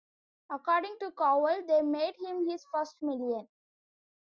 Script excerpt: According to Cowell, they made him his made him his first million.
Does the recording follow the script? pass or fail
fail